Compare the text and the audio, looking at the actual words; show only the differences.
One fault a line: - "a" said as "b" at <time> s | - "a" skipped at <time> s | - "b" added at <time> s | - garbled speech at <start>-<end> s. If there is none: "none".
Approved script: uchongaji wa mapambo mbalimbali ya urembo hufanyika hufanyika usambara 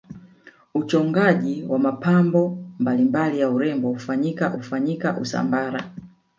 none